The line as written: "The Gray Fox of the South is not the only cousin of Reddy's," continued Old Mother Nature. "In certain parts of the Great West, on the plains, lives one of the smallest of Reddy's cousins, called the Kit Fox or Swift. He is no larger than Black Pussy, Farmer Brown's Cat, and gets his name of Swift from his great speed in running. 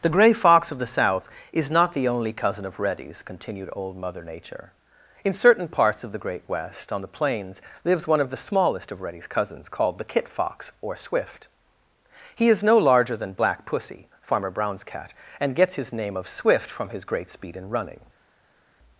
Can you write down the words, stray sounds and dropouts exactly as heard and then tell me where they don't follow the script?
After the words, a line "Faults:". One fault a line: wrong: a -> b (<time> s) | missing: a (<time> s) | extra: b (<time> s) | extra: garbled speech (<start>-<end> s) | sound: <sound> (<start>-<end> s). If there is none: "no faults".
"The Gray Fox of the South is not the only cousin of Reddy's," continued Old Mother Nature. "In certain parts of the Great West, on the plains, lives one of the smallest of Reddy's cousins, called the Kit Fox or Swift. He is no larger than Black Pussy, Farmer Brown's Cat, and gets his name of Swift from his great speed in running.
Faults:
no faults